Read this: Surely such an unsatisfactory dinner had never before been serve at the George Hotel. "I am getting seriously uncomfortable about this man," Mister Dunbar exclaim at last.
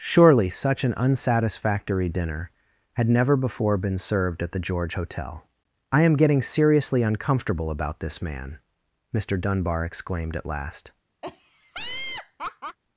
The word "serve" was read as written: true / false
false